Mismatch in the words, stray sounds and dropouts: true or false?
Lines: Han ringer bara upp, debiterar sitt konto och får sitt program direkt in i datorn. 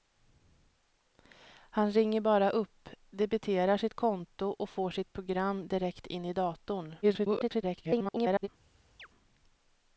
true